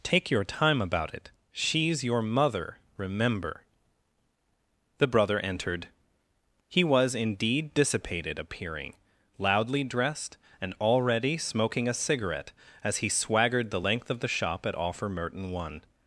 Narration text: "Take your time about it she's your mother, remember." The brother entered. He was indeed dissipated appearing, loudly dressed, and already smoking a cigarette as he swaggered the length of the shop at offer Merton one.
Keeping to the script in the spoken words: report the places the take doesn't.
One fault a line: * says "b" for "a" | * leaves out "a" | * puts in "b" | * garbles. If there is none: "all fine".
all fine